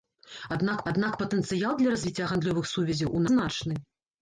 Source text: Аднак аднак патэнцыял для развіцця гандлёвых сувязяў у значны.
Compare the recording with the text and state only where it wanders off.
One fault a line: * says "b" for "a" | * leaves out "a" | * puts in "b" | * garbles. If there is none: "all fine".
all fine